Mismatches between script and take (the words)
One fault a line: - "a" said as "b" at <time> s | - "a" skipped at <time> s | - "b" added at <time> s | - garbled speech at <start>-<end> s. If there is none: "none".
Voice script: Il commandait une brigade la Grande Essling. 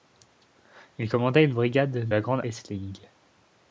none